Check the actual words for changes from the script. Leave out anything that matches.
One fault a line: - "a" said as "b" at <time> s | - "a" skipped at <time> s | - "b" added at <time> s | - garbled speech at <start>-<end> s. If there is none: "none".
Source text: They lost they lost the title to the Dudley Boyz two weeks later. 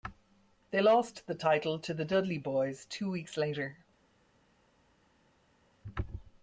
- "they lost" skipped at 1.3 s